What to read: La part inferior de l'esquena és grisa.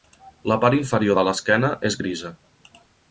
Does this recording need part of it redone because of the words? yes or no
no